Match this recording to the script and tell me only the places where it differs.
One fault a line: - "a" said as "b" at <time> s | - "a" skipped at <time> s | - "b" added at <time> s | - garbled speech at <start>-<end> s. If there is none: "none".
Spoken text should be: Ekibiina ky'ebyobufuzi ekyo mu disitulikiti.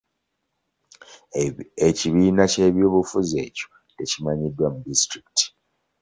- "tekimanyiddwa" added at 4.0 s